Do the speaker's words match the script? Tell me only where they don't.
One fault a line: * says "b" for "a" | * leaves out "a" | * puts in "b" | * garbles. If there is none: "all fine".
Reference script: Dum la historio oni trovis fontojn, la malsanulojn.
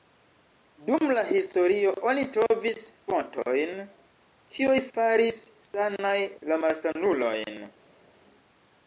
* puts in "kiuj faris sanaj"